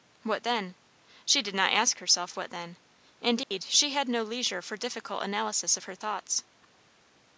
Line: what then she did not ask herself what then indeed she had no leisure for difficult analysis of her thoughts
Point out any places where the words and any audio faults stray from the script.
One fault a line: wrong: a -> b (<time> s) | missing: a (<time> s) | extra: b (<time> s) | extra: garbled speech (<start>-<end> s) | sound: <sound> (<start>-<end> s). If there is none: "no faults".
sound: dropout (3.4-3.5 s)